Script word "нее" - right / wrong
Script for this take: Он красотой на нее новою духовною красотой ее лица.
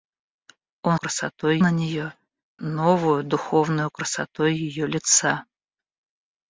right